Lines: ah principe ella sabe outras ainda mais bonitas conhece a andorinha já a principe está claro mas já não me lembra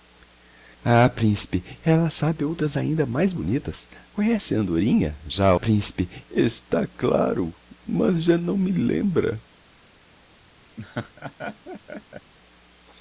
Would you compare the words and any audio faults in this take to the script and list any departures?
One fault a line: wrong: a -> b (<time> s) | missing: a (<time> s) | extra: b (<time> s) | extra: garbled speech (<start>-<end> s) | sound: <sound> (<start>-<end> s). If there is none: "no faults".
sound: laugh (10.8-12.3 s)